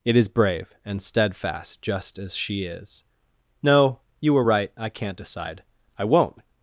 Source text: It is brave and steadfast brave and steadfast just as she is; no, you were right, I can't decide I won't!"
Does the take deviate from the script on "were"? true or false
false